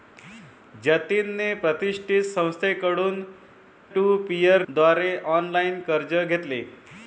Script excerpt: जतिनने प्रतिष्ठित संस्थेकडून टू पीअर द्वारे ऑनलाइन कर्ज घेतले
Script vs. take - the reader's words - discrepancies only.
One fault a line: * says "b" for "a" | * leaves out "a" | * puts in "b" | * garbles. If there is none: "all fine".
all fine